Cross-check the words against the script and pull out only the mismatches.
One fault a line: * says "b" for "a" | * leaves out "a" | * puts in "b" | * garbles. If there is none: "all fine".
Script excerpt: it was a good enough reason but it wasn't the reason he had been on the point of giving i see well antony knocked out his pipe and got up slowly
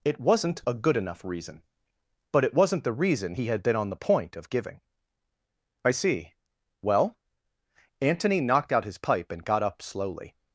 * says "wasn't" for "was"